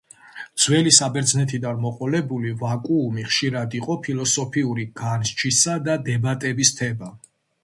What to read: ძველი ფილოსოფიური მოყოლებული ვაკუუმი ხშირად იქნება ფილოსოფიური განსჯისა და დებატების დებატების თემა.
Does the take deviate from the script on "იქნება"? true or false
true